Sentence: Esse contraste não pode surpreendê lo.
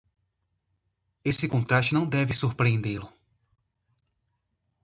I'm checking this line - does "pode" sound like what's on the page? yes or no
no